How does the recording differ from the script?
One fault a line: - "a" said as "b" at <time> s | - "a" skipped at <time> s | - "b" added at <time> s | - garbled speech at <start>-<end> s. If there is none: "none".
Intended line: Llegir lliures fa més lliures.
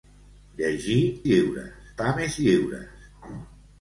none